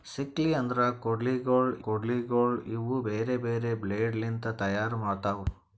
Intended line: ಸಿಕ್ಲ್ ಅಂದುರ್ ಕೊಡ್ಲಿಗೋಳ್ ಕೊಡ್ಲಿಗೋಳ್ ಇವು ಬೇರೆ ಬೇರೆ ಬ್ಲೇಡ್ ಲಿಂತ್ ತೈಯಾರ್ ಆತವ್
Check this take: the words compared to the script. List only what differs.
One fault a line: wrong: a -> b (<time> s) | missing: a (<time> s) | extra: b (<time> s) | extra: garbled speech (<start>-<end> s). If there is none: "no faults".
no faults